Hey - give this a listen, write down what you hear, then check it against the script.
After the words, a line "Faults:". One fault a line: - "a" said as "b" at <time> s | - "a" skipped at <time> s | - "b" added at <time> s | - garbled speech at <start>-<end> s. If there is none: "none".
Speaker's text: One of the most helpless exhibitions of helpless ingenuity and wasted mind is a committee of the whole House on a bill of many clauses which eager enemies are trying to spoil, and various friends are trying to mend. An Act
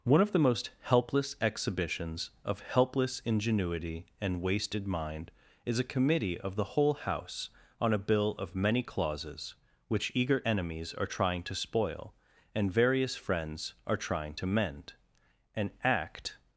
One of the most helpless exhibitions of helpless ingenuity and wasted mind is a committee of the whole House on a bill of many clauses which eager enemies are trying to spoil, and various friends are trying to mend. An Act
Faults:
none